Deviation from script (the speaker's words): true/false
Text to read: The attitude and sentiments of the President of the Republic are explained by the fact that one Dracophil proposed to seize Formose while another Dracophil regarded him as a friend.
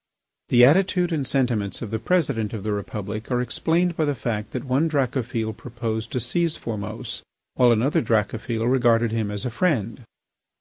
false